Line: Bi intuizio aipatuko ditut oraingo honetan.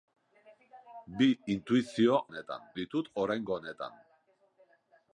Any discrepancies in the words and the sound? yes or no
yes